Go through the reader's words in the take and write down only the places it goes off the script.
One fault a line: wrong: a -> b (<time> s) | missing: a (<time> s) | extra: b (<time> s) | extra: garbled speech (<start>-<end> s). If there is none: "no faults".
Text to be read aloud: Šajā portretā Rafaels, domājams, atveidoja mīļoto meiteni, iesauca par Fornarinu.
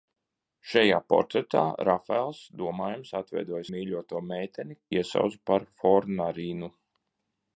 no faults